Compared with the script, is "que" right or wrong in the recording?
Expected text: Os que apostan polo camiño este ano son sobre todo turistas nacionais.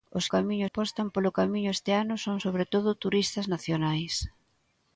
wrong